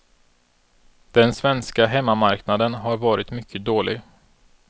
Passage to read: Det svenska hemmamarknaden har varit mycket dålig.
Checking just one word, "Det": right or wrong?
wrong